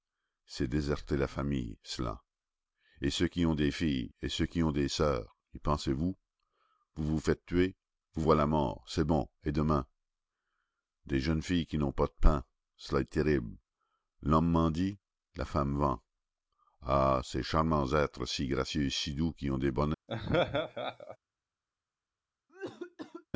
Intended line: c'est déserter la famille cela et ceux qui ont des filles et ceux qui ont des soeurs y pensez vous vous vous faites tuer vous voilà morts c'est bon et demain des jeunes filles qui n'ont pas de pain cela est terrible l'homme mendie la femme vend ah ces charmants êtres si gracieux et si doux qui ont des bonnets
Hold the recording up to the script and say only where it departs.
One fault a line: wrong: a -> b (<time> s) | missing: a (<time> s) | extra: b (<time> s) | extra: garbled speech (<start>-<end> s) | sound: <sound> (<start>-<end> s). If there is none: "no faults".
sound: laugh (20.1-21.2 s)
sound: cough (22.5-23.3 s)